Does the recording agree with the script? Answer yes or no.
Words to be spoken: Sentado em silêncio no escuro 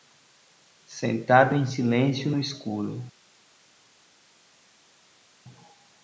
yes